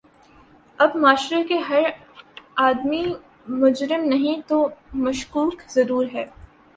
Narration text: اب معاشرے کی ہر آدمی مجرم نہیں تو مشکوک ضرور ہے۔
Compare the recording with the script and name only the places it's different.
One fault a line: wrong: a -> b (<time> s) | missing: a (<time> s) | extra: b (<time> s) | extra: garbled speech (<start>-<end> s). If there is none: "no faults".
wrong: کی -> کا (1.4 s)